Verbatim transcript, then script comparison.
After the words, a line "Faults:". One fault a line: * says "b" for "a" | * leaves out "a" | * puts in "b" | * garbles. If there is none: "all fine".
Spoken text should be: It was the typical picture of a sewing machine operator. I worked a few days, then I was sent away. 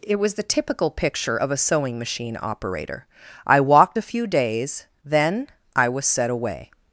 It was the typical picture of a sewing machine operator. I walked a few days, then I was set away.
Faults:
* says "walked" for "worked"
* says "set" for "sent"